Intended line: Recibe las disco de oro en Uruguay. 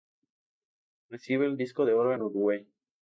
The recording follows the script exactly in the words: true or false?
false